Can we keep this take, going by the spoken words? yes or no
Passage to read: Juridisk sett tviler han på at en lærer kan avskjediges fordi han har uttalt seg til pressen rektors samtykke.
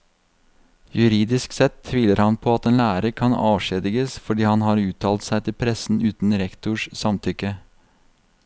no